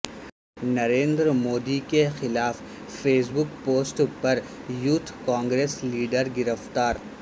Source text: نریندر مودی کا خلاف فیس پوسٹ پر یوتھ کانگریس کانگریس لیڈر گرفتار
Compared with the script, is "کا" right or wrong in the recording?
wrong